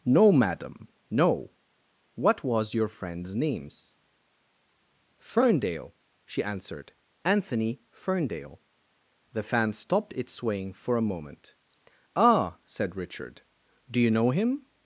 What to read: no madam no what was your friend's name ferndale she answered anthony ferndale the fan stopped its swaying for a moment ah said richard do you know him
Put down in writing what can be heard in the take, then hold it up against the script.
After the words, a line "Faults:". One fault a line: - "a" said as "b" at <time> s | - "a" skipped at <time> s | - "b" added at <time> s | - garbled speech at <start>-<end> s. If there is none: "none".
no madam no what was your friend's names ferndale she answered anthony ferndale the fan stopped its swaying for a moment ah said richard do you know him
Faults:
- "name" said as "names" at 3.4 s